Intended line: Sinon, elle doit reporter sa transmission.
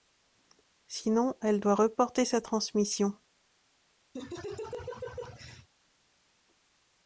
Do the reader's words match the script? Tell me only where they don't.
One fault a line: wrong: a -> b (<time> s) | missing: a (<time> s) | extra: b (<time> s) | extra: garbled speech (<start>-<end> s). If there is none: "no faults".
no faults